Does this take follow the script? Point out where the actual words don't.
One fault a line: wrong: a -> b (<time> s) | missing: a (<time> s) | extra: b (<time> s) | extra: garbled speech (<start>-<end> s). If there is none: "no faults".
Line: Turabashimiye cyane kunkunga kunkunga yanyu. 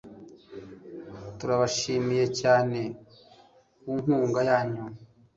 missing: kunkunga (4.4 s)